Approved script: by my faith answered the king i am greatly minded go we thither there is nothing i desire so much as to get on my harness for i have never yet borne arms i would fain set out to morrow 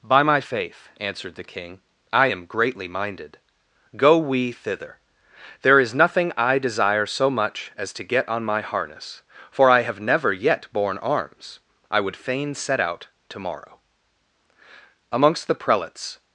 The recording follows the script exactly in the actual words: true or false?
false